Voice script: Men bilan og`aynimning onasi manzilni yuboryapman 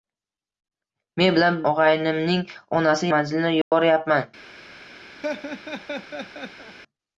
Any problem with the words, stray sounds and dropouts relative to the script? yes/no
yes